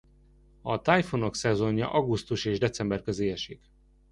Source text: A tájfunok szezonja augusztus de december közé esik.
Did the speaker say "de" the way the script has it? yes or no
no